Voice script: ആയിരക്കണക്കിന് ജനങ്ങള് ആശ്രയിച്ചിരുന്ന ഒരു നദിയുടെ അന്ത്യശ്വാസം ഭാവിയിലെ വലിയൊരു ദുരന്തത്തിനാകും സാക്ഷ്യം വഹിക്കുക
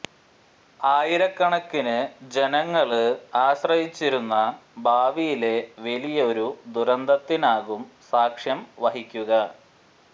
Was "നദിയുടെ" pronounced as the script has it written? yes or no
no